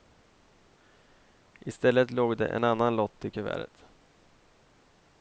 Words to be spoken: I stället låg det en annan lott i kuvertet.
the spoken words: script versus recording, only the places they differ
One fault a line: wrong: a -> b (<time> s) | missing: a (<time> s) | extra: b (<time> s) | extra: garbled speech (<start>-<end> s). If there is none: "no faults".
no faults